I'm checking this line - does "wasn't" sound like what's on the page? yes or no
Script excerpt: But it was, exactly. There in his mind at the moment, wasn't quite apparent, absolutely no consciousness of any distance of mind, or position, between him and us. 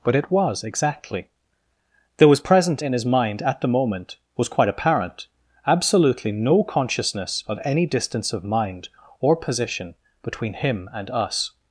no